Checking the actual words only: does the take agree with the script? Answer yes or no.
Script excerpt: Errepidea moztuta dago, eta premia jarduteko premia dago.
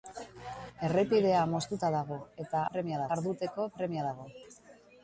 yes